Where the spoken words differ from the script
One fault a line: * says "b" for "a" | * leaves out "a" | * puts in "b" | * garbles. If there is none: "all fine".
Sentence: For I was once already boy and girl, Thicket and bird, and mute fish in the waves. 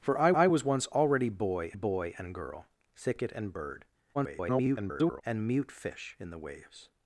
* puts in "I"
* puts in "boy"
* garbles